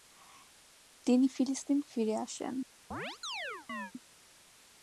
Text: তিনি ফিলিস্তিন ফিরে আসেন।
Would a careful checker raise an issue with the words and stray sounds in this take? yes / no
yes